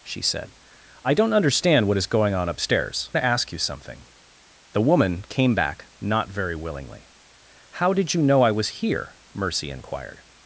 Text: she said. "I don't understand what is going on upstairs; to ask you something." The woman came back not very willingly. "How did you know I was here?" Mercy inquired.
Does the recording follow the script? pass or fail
pass